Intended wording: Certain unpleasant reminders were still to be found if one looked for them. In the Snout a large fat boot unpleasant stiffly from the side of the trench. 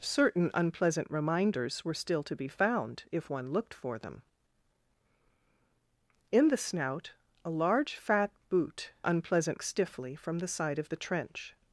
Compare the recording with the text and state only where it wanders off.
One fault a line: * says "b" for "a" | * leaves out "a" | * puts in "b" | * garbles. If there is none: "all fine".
all fine